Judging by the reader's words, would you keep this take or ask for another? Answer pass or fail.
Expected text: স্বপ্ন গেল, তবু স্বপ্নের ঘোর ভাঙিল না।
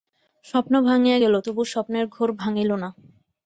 fail